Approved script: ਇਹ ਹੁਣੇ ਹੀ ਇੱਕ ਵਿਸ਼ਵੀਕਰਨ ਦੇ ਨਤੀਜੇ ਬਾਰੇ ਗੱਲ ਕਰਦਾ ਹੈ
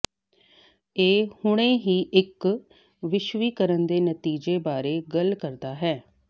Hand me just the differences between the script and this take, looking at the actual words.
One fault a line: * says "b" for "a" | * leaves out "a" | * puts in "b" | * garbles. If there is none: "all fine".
all fine